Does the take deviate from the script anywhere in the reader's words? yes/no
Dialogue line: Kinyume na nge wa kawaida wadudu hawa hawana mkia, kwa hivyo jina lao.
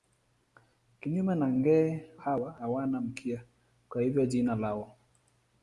yes